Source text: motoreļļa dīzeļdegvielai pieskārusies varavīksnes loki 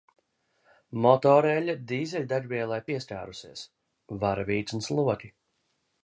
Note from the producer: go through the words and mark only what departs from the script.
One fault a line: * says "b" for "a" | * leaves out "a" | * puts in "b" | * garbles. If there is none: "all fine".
all fine